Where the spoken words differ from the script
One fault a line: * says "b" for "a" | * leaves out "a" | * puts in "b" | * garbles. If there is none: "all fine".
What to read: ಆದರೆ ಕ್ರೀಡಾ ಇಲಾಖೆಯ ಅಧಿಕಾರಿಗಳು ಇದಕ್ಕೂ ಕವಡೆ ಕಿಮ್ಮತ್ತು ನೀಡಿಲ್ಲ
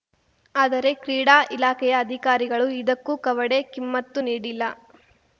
all fine